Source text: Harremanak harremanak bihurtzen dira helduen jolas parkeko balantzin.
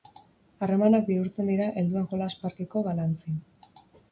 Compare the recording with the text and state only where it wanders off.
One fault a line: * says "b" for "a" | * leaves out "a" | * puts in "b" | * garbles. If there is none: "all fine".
* leaves out "harremanak"